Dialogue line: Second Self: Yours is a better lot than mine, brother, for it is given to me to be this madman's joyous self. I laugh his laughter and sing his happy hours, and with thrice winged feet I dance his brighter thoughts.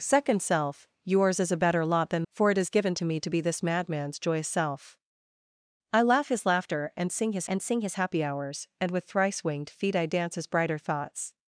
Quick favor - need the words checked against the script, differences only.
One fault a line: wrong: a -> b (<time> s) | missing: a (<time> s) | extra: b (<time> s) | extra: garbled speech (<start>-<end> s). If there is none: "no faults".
missing: mine brother (2.3 s)
extra: and sing his (7.5 s)